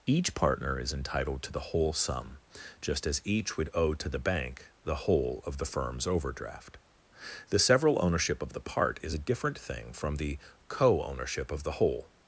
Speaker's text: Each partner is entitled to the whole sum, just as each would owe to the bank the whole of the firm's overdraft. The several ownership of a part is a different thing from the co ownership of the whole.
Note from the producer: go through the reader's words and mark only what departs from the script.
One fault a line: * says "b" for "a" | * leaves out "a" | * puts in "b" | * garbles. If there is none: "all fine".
* says "the" for "a"